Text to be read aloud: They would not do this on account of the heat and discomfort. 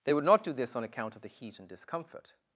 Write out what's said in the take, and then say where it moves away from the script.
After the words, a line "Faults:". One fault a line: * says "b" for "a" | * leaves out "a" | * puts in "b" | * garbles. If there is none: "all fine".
They would not do this on account of the heat and discomfort.
Faults:
all fine